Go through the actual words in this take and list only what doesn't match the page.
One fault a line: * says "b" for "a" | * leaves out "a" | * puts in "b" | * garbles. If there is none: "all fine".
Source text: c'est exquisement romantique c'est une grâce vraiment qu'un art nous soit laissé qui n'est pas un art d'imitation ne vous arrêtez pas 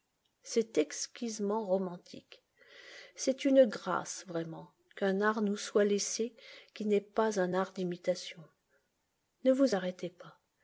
all fine